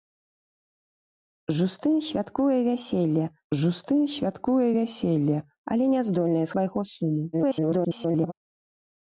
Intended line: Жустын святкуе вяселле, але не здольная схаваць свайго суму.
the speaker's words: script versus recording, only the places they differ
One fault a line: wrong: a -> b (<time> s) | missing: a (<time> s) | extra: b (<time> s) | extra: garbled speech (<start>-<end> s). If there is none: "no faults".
extra: жустын святкуе вяселле (3.6 s)
missing: схаваць (6.5 s)
extra: garbled speech (7.3-8.3 s)